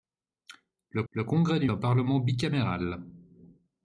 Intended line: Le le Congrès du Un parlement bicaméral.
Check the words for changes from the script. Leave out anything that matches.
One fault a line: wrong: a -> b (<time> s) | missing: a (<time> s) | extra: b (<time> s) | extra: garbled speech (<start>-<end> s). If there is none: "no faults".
no faults